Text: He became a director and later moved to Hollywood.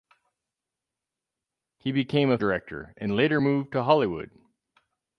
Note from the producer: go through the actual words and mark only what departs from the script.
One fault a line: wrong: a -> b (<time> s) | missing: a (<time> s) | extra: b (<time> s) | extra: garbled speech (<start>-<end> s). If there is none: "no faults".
no faults